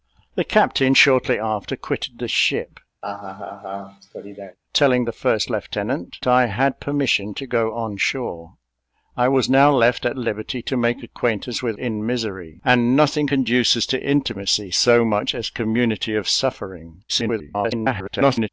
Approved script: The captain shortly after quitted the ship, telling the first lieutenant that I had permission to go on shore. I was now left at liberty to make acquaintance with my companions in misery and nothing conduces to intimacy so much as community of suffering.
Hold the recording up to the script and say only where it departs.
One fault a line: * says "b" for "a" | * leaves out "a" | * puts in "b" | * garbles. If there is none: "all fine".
* leaves out "that"
* leaves out "my companions"
* garbles